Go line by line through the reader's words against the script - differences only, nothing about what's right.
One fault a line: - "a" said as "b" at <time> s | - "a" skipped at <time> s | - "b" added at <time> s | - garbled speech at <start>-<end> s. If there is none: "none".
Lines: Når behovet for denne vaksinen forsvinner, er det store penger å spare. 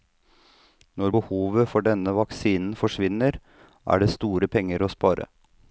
none